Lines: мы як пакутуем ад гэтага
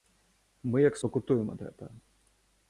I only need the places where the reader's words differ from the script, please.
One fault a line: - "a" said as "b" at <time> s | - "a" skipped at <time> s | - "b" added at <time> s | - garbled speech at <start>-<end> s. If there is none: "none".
none